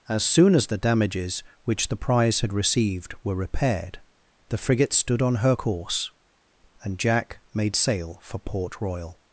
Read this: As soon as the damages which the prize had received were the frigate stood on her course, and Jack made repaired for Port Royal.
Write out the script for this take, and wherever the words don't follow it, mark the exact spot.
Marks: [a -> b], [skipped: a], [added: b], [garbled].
As soon as the damages which the prize had received were [added: repaired] the frigate stood on her course, and Jack made [repaired -> sail] for Port Royal.